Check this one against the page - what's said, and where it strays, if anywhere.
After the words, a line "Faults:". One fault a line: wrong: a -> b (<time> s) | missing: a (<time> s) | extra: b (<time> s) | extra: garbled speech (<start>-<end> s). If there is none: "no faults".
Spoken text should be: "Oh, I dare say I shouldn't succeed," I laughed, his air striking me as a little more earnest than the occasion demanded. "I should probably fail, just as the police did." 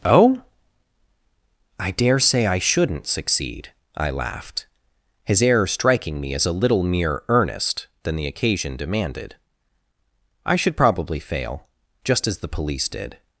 "Oh, I dare say I shouldn't succeed," I laughed, his air striking me as a little mere earnest than the occasion demanded. "I should probably fail, just as the police did."
Faults:
wrong: more -> mere (6.8 s)